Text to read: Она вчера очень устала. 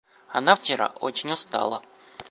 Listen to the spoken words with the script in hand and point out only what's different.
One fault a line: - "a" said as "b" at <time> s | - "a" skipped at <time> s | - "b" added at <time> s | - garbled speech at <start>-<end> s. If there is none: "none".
none